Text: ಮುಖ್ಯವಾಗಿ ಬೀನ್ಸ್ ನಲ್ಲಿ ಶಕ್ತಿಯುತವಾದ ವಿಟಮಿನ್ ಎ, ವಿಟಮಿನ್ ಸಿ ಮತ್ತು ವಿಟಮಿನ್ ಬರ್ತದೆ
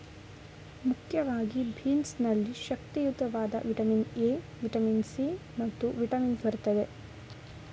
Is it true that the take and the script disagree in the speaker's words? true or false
false